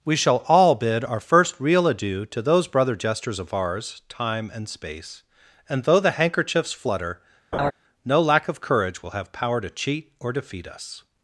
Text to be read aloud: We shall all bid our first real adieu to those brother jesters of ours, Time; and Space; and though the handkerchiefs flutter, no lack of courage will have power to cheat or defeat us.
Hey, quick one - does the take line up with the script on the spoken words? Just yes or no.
yes